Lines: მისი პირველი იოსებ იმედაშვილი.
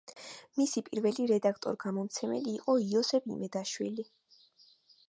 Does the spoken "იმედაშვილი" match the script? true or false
true